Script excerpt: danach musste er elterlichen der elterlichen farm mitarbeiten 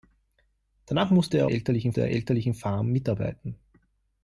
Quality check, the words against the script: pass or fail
pass